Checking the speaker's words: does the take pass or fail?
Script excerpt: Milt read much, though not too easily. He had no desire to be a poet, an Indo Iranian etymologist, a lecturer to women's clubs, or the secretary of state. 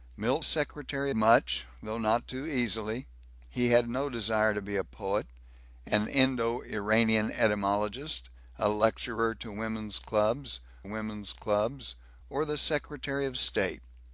fail